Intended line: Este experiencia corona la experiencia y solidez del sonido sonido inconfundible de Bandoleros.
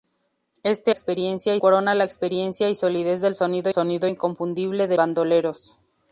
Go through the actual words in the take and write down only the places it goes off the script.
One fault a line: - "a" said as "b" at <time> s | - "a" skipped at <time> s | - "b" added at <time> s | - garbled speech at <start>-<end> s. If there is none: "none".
none